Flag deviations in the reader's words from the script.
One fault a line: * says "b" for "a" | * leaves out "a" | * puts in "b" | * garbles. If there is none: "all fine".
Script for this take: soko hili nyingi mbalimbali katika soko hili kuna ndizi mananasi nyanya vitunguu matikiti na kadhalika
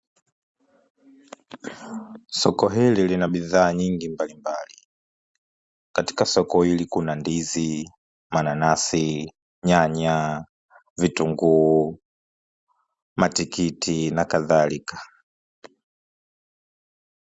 * puts in "lina bidhaa"